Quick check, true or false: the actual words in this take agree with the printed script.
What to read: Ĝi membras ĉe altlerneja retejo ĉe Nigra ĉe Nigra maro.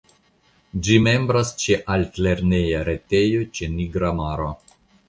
false